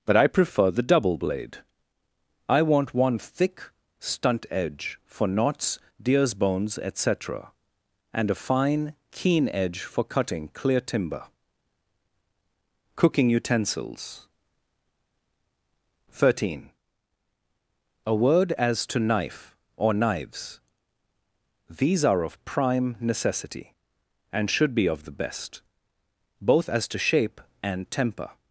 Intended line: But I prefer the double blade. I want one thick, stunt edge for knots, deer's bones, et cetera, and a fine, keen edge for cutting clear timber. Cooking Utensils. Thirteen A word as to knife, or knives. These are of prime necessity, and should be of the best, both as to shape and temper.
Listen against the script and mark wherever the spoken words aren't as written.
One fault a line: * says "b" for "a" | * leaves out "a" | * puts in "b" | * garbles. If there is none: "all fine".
all fine